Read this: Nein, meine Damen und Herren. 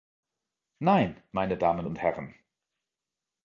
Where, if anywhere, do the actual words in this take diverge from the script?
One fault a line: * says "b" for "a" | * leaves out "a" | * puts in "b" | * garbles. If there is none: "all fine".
all fine